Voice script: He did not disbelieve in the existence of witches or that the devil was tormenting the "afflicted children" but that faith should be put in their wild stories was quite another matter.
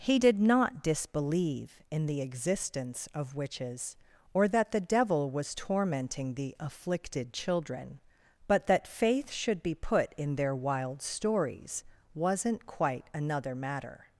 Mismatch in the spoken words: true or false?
true